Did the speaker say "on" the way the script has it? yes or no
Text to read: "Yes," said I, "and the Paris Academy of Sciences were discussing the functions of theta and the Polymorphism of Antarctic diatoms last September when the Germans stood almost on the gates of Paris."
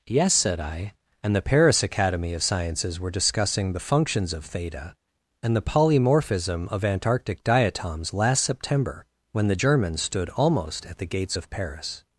no